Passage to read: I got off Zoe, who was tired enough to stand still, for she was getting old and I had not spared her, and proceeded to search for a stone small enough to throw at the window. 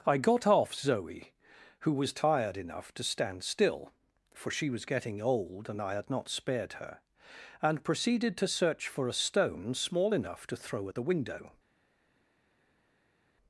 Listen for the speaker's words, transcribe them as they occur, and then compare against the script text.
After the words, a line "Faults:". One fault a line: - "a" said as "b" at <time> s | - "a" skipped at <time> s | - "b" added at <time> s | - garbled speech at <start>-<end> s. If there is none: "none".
I got off Zoe, who was tired enough to stand still, for she was getting old and I had not spared her, and proceeded to search for a stone small enough to throw at the window.
Faults:
none